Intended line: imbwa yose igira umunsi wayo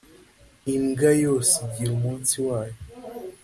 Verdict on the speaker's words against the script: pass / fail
pass